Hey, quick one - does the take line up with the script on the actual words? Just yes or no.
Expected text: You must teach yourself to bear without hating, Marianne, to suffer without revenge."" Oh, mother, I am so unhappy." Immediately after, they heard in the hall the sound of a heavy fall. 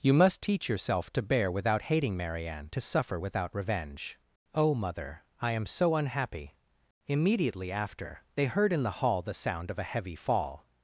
yes